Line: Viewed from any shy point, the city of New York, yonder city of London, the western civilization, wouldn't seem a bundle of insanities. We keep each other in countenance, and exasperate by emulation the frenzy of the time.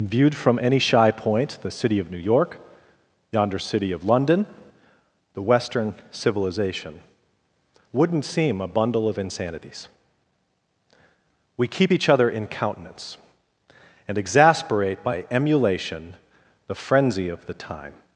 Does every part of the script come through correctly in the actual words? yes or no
yes